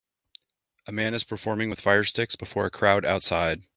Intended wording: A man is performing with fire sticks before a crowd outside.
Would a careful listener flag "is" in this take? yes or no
no